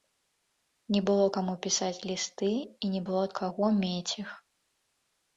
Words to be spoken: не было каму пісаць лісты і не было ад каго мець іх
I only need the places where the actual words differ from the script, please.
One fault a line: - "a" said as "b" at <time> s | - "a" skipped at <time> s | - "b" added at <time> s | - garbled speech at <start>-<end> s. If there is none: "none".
none